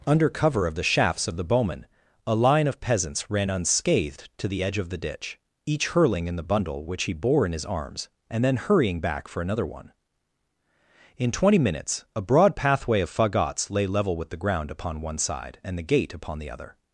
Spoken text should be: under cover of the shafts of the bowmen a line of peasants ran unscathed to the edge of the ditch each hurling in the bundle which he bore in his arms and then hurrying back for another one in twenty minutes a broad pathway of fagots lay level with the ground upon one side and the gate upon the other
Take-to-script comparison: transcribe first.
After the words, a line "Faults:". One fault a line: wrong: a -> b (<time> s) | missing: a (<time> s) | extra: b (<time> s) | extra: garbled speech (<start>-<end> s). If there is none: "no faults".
under cover of the shafts of the bowmen a line of peasants ran unscathed to the edge of the ditch each hurling in the bundle which he bore in his arms and then hurrying back for another one in twenty minutes a broad pathway of fagots lay level with the ground upon one side and the gate upon the other
Faults:
no faults